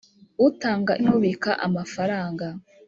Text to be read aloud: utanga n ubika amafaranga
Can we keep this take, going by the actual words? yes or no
yes